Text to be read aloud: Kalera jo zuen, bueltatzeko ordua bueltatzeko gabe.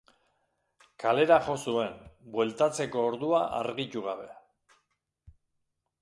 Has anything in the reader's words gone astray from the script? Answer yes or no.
yes